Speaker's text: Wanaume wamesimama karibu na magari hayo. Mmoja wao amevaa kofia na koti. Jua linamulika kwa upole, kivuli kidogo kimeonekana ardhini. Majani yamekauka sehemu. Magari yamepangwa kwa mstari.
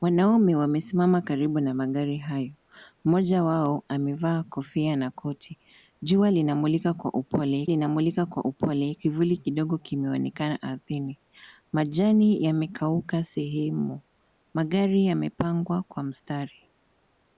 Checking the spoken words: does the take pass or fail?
fail